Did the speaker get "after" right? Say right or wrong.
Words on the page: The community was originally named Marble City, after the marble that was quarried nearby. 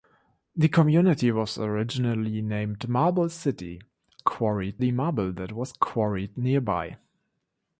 wrong